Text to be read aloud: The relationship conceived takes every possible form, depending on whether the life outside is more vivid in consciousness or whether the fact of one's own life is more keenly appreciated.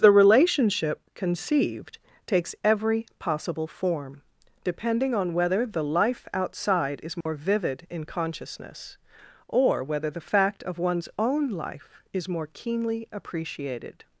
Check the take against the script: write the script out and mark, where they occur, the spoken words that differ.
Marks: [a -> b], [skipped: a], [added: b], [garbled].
The relationship conceived takes every possible form, depending on whether the life outside is more vivid in consciousness or whether the fact of one's own life is more keenly appreciated.